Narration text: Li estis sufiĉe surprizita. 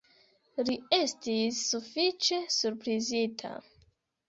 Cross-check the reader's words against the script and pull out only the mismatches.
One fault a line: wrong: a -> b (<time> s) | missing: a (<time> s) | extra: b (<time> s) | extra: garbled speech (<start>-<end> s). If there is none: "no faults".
no faults